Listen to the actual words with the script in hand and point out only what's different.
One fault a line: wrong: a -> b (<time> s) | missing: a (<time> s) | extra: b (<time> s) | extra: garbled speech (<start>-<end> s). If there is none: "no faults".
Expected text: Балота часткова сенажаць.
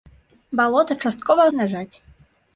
no faults